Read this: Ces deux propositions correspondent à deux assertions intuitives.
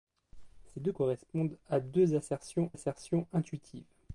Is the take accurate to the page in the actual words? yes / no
no